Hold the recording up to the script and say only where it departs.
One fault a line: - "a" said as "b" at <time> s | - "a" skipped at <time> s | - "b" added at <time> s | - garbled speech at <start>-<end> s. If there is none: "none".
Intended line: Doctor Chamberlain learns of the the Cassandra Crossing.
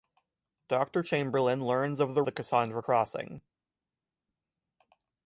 none